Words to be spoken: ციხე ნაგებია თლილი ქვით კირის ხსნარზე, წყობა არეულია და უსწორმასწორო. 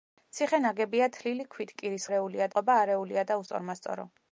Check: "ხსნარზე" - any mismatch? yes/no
yes